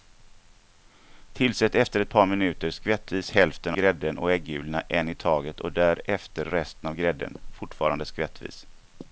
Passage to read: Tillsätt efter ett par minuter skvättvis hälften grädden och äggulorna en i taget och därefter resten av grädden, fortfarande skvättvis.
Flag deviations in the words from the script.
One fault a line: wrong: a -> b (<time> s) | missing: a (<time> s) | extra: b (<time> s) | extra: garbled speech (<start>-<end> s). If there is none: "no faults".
no faults